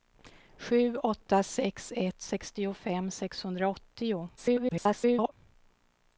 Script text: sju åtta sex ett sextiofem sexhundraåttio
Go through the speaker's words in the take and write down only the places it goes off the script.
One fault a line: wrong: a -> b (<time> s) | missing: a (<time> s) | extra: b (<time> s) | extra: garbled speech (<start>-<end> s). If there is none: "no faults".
extra: garbled speech (4.4-5.3 s)